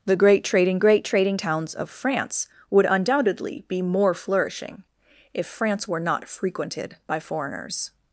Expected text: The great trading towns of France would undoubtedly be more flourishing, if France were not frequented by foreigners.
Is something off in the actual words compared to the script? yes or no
yes